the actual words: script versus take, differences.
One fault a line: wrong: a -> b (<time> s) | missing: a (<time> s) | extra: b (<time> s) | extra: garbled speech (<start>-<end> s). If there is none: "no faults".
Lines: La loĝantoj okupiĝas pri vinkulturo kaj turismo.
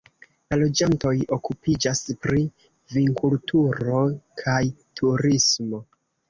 no faults